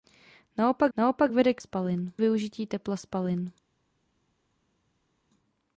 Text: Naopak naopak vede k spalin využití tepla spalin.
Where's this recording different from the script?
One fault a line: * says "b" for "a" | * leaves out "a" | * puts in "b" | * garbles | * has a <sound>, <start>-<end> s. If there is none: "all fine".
all fine